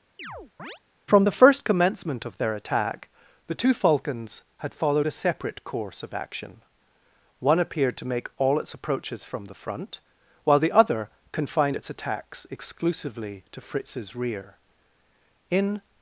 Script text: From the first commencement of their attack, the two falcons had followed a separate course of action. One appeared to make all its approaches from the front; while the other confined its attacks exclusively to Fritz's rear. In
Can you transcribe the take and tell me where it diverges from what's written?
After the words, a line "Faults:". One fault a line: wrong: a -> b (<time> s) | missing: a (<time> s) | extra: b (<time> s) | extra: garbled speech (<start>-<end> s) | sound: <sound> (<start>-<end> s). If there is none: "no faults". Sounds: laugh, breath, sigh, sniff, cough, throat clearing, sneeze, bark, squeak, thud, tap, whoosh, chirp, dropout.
From the first commencement of their attack, the two falcons had followed a separate course of action. One appeared to make all its approaches from the front; while the other confined its attacks exclusively to Fritz's rear. In
Faults:
sound: chirp (0.2-0.8 s)